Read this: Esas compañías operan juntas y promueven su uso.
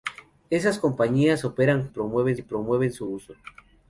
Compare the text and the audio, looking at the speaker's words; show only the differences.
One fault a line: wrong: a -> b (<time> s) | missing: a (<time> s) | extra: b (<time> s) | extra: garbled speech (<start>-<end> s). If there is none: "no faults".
wrong: juntas -> promueven (1.9 s)